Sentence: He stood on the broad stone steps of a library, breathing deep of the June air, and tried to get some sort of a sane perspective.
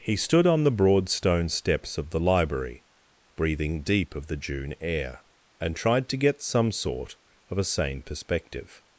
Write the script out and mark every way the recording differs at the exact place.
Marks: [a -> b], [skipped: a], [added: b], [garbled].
He stood on the broad stone steps of [a -> the] library, breathing deep of the June air, and tried to get some sort of a sane perspective.